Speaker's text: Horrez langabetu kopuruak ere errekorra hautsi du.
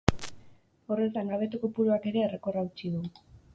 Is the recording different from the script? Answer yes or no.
no